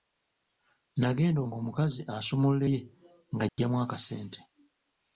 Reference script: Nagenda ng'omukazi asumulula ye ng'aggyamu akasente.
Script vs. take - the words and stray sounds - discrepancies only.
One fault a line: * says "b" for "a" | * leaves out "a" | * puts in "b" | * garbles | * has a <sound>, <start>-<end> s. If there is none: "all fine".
* has a dropout, 3.5-3.6 s